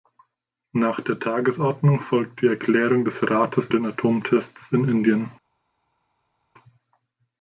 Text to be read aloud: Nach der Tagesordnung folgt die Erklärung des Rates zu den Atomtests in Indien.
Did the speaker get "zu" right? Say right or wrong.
wrong